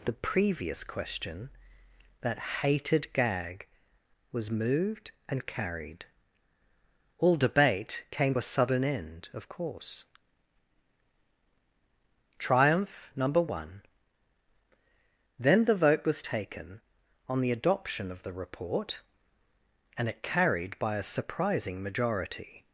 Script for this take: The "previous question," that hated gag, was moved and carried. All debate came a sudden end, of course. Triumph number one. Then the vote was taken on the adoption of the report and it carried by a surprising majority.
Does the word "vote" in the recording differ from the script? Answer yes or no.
no